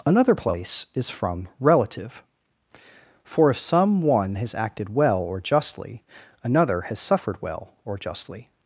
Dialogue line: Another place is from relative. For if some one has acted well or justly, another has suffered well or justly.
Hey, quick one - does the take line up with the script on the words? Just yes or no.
yes